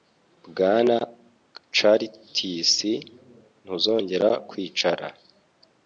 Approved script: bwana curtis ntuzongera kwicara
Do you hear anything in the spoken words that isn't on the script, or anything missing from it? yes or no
no